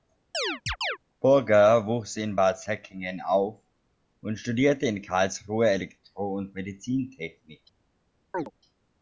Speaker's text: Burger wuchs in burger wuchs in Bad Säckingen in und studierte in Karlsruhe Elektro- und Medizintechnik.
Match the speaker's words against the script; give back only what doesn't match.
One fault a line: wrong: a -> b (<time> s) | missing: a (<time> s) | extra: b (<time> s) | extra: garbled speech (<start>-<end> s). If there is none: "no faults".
missing: burger wuchs in (2.4 s)
wrong: in -> auf (3.2 s)